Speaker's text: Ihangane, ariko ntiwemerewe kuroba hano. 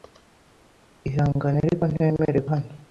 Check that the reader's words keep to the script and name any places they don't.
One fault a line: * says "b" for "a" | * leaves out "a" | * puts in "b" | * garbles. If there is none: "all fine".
* leaves out "kuroba"